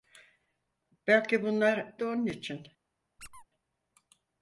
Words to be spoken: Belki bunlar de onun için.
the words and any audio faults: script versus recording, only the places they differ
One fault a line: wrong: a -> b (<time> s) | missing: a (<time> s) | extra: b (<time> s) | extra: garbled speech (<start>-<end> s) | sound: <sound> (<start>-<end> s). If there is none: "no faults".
sound: squeak (3.2-3.5 s)